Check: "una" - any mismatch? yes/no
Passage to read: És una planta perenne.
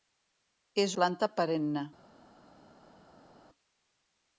yes